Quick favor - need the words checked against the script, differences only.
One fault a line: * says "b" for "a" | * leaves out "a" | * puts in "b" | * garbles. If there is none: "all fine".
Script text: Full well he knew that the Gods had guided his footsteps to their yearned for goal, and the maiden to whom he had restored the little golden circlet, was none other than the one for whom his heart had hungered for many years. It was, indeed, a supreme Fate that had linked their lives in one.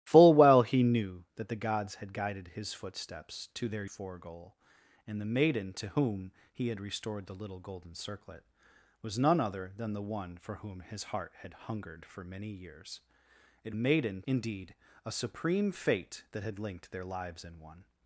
* leaves out "yearned"
* says "maiden" for "was"